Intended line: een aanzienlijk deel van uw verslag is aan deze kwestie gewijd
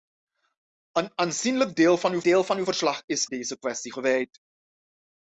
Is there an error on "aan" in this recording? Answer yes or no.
yes